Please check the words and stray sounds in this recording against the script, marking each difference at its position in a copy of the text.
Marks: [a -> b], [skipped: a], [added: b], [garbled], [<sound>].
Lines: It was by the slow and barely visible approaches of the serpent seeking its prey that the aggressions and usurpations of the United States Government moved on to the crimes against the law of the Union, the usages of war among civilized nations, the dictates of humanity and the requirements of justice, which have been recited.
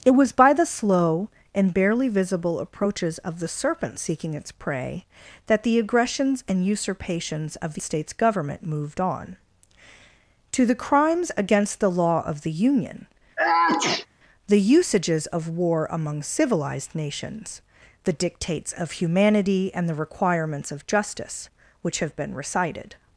It was by the slow and barely visible approaches of the serpent seeking its prey that the aggressions and usurpations of the [skipped: United] States Government moved on to the crimes against the law of the Union, [sneeze] the usages of war among civilized nations, the dictates of humanity and the requirements of justice, which have been recited.